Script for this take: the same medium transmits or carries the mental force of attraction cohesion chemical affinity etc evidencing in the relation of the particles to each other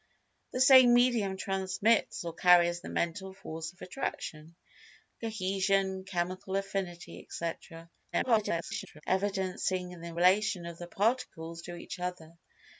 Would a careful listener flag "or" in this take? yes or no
no